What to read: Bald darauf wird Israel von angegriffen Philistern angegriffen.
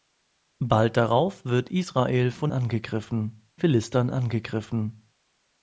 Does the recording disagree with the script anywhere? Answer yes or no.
no